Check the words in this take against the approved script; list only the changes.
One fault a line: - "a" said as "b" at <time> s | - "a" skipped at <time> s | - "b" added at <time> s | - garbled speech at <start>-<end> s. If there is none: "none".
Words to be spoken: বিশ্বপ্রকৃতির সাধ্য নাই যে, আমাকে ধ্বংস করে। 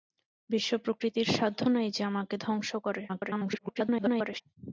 - garbled speech at 3.1-4.4 s